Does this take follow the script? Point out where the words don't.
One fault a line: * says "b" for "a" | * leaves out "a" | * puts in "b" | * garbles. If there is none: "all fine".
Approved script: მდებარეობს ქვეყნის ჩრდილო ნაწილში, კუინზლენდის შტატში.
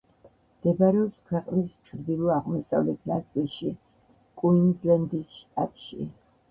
* puts in "აღმოსავლეთ"